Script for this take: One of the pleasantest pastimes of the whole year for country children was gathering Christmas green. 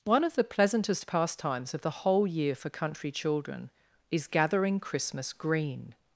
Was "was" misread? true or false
true